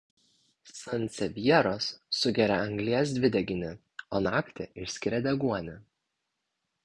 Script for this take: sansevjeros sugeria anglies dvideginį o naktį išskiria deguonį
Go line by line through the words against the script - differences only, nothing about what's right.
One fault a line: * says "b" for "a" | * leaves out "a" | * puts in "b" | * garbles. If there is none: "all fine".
all fine